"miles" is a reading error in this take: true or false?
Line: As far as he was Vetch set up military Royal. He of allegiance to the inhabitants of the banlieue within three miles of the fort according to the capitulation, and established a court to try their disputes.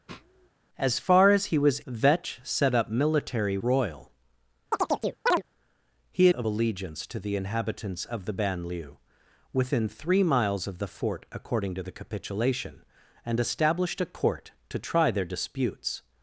false